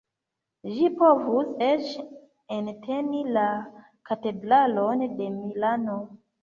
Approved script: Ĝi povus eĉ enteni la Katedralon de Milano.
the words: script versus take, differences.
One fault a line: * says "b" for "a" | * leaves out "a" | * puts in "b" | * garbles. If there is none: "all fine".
all fine